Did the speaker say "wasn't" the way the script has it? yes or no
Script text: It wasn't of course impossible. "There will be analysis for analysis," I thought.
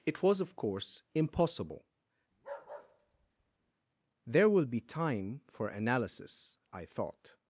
no